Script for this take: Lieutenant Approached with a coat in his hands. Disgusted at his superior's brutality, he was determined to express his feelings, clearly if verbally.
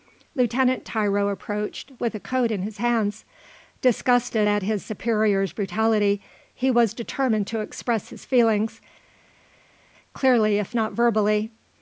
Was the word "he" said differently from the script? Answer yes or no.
no